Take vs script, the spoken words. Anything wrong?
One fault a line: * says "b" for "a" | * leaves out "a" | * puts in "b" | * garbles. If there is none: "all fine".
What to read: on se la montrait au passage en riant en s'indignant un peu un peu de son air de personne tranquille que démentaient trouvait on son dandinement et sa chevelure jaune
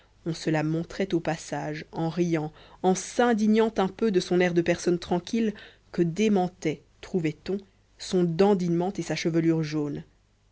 * leaves out "un peu"